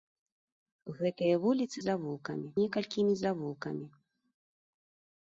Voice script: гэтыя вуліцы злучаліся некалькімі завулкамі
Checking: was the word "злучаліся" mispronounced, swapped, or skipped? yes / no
yes